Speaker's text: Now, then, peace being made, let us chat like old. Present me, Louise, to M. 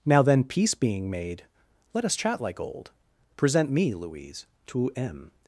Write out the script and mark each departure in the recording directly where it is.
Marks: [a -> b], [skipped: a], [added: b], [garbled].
Now, then, peace being made, let us chat like old. Present me, Louise, to M.